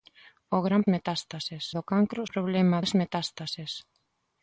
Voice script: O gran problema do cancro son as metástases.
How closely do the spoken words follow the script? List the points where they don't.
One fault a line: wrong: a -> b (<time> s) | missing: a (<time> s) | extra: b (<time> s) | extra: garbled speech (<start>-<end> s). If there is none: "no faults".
wrong: problema -> metástases (0.9 s)
wrong: son -> problema (2.3 s)